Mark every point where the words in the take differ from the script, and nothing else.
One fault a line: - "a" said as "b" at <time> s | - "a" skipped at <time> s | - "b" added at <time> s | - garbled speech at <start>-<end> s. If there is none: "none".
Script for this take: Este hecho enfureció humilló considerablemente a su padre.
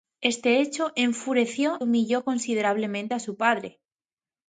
none